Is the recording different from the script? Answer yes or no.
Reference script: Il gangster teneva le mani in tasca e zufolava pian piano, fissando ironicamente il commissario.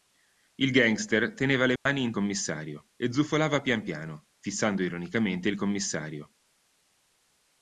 yes